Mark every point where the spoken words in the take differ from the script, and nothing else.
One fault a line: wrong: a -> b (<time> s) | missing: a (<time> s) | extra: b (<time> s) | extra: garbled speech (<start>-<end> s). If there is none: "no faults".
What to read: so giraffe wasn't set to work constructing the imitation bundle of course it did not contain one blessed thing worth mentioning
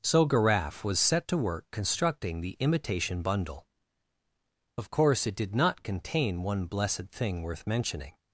wrong: wasn't -> was (0.8 s)